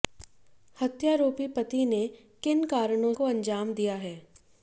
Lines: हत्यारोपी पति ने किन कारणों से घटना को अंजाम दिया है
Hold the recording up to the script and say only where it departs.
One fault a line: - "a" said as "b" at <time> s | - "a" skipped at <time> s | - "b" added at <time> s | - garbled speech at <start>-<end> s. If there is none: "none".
- "से घटना" skipped at 3.1 s